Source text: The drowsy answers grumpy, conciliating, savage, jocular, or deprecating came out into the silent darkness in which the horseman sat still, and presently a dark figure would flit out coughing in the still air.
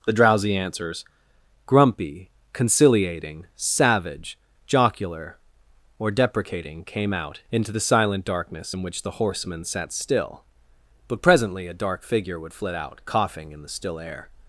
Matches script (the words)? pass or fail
fail